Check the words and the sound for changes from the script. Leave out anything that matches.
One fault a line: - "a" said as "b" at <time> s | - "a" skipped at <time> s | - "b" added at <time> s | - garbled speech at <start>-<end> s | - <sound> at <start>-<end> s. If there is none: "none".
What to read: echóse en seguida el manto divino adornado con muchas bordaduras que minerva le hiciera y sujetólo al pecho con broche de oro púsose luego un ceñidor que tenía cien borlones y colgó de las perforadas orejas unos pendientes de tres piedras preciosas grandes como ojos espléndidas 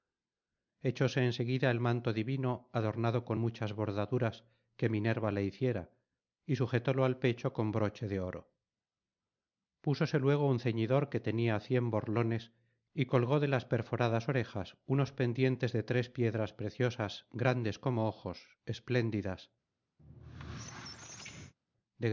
- squeak at 20.0-21.5 s